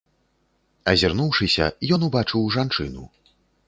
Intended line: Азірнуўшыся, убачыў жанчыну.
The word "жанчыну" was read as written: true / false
true